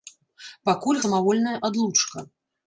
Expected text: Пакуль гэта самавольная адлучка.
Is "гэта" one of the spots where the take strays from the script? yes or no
yes